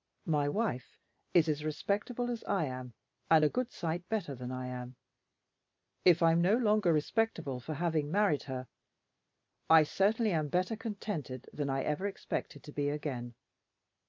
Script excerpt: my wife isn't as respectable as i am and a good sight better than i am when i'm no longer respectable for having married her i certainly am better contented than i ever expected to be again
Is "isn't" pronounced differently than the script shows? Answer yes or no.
yes